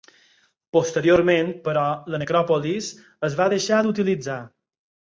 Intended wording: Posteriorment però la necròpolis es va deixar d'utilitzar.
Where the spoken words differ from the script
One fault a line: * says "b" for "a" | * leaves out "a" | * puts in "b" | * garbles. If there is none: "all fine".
all fine